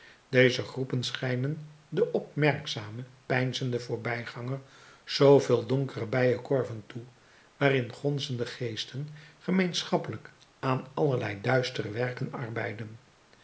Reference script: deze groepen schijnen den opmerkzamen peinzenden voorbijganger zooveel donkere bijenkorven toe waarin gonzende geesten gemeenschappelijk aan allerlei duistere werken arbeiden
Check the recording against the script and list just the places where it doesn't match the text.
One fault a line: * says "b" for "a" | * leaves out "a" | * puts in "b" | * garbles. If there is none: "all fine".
all fine